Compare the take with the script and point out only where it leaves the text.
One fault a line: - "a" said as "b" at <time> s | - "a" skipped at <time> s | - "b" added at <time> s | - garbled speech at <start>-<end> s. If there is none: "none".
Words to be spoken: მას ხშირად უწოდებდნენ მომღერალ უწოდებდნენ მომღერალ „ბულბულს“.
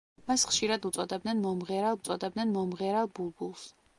none